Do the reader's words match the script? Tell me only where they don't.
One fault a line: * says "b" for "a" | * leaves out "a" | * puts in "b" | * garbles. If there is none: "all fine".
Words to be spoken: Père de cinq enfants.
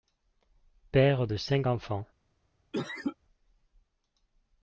all fine